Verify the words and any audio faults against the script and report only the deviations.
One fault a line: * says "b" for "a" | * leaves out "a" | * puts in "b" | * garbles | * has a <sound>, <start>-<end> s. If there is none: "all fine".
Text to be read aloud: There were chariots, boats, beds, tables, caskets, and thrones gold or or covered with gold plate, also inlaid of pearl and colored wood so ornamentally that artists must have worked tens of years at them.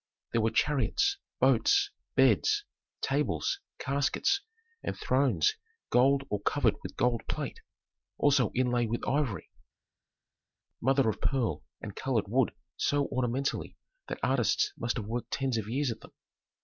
* leaves out "or"
* puts in "with ivory mother"